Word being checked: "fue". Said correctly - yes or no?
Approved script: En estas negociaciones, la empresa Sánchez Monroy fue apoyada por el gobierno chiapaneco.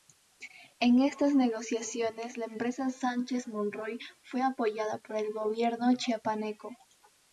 yes